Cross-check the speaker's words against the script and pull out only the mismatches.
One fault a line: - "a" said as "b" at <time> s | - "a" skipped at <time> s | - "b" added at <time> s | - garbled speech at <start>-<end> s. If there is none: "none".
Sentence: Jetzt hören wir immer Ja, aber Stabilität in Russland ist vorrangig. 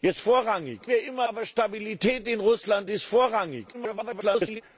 - "hören" said as "vorrangig" at 0.2 s
- "Ja" skipped at 1.3 s
- garbled speech at 3.7-4.6 s